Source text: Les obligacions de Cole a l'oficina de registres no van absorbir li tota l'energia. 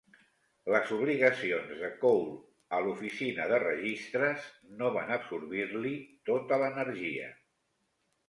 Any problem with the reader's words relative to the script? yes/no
no